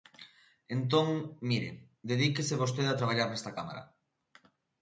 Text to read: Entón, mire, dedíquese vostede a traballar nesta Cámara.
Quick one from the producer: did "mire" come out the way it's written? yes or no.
yes